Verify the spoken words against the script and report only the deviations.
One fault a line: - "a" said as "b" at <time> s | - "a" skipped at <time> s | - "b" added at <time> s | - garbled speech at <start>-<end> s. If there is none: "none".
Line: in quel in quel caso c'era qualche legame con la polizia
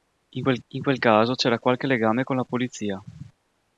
none